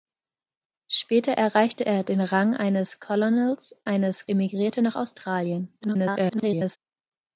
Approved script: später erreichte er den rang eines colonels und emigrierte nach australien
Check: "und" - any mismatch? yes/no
yes